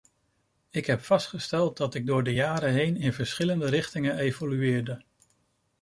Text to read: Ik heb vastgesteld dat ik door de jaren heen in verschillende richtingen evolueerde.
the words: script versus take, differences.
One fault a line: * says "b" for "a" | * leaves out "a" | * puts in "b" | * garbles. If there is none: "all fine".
all fine